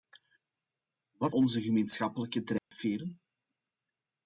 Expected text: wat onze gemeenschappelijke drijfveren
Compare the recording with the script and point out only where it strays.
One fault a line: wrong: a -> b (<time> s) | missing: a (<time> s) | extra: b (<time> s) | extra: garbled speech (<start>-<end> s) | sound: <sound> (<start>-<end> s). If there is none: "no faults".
sound: dropout (2.6-2.7 s)